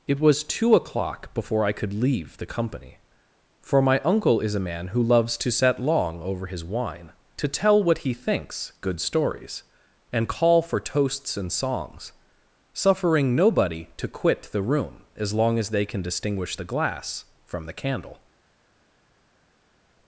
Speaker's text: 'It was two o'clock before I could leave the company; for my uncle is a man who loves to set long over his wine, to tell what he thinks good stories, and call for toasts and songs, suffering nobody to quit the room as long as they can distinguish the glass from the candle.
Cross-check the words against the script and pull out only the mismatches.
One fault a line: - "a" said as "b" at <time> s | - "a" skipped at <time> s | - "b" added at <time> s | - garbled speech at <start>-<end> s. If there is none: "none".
none